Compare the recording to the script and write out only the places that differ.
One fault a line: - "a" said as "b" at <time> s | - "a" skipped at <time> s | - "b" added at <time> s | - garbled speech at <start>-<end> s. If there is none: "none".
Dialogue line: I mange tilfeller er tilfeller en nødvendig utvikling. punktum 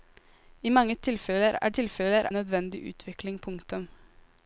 none